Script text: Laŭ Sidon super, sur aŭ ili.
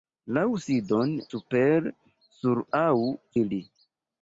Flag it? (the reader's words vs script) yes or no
no